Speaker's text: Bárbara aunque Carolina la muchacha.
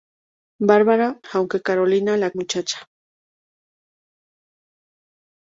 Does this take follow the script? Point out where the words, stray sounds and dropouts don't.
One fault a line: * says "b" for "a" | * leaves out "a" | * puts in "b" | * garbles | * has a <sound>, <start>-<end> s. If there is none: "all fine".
all fine